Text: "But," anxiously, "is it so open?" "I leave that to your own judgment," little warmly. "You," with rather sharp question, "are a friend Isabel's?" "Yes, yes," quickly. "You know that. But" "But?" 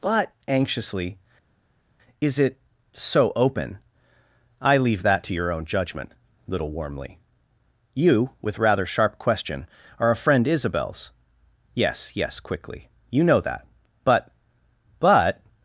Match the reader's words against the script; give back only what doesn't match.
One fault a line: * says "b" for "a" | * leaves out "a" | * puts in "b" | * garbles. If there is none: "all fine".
all fine